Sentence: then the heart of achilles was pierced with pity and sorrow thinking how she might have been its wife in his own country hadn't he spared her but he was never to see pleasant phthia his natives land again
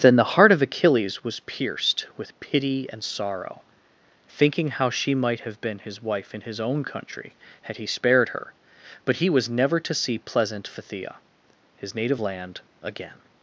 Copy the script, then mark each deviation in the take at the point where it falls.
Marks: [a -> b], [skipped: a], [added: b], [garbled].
then the heart of achilles was pierced with pity and sorrow thinking how she might have been [its -> his] wife in his own country [hadn't -> had] he spared her but he was never to see pleasant phthia his [natives -> native] land again